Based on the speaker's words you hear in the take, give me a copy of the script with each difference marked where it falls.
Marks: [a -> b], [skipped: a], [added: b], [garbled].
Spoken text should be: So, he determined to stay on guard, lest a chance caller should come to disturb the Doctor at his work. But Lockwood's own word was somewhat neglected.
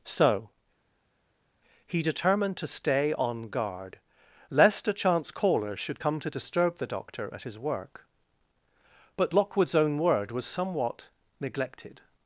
So, he determined to stay on guard, lest a chance caller should come to disturb the Doctor at his work. But Lockwood's own word was somewhat neglected.